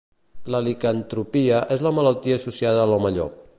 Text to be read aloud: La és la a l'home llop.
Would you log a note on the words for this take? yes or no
yes